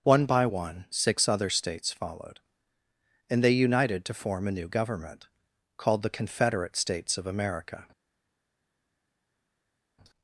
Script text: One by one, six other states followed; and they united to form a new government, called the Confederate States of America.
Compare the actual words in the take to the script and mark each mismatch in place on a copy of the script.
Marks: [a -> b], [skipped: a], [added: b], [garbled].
One by one, six other states followed; and they united to form a new government, called the Confederate States of America.